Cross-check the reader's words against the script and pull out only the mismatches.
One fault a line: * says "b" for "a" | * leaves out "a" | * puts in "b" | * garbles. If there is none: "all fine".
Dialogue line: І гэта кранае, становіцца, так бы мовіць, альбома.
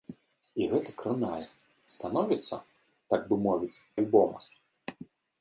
all fine